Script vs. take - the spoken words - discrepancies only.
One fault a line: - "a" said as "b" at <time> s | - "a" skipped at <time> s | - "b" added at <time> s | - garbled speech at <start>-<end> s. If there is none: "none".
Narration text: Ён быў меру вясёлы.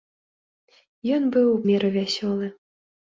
none